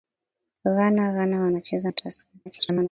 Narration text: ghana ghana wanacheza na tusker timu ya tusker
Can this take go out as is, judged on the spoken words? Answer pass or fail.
fail